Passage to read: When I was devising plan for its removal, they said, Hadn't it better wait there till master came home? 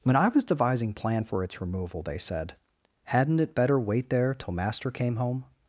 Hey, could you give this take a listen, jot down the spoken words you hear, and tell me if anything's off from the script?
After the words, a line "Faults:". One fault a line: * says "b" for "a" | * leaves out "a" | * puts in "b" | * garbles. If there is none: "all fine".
When I was devising plan for its removal, they said, Hadn't it better wait there till master came home?
Faults:
all fine